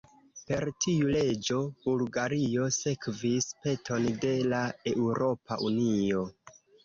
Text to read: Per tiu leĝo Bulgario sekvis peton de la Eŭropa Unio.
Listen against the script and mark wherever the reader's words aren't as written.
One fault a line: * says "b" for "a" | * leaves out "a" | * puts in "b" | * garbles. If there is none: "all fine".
all fine